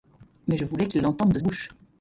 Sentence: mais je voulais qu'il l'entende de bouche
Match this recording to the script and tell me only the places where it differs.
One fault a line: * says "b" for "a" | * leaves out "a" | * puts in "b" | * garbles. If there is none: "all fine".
all fine